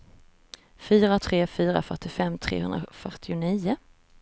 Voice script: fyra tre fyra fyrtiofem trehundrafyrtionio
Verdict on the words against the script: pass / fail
pass